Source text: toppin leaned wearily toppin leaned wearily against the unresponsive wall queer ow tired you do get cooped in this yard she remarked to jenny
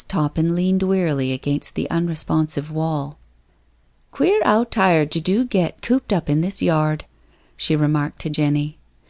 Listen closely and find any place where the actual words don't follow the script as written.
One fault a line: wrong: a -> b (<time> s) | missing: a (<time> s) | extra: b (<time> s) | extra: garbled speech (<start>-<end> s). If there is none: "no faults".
missing: toppin leaned wearily (1.3 s)
extra: up (6.1 s)